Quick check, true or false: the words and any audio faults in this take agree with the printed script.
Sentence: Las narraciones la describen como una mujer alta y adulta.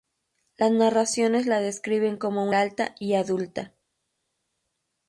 false